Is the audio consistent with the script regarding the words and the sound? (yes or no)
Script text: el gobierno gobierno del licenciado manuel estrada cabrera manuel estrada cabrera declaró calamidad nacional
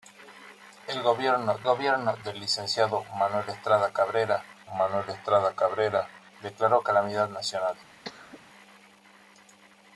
no